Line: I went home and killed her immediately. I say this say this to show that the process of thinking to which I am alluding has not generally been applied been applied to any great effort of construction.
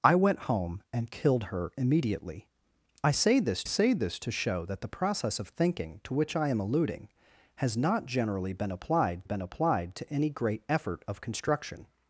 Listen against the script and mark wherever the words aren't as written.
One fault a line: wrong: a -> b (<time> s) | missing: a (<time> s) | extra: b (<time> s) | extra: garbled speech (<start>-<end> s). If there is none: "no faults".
no faults